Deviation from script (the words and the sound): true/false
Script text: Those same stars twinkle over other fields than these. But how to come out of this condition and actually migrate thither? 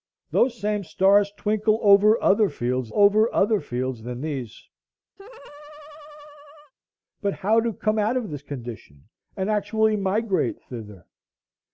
true